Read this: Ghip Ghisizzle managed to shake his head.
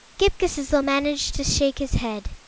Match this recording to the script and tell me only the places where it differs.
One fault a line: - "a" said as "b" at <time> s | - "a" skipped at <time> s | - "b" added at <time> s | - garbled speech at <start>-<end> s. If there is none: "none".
none